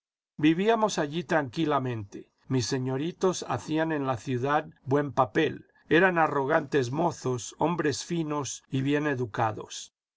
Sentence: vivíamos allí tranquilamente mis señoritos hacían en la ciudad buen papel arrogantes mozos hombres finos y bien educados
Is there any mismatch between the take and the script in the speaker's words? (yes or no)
yes